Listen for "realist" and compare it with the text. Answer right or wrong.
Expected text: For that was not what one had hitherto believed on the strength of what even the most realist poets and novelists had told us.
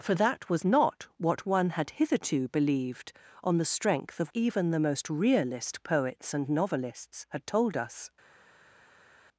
right